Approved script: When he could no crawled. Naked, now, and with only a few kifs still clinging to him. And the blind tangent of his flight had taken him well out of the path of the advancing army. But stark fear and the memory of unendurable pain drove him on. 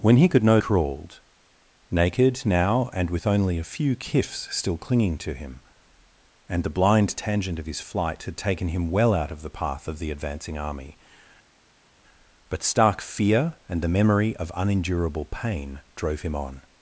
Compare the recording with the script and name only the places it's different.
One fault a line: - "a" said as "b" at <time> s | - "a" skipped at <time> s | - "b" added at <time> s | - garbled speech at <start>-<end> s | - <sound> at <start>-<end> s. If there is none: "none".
none